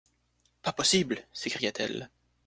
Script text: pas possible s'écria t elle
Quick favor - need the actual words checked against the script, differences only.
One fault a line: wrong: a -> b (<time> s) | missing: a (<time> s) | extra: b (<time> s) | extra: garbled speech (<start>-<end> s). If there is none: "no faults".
no faults